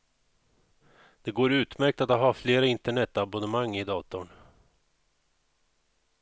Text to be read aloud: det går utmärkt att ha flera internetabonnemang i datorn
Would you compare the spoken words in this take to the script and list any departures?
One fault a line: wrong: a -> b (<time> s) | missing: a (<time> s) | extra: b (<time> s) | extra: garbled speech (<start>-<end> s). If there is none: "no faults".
no faults